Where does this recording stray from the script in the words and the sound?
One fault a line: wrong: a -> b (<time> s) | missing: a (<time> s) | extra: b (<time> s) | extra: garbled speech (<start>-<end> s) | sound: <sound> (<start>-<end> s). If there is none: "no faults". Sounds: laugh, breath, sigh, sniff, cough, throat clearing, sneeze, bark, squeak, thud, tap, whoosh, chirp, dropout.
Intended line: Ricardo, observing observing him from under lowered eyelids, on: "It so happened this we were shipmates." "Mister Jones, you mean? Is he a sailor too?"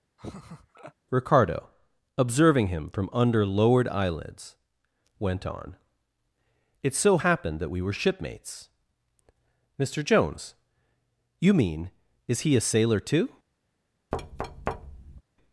sound: laugh (0.2-0.9 s)
missing: observing (2.7 s)
extra: went (5.2 s)
wrong: this -> that (7.6 s)
sound: thud (14.1-15.2 s)